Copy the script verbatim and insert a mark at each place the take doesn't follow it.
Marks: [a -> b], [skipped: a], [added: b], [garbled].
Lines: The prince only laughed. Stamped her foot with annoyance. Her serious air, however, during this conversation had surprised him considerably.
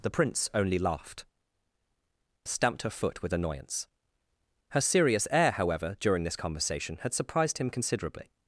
The prince only laughed. Stamped her foot with annoyance. Her serious air, however, during this conversation had surprised him considerably.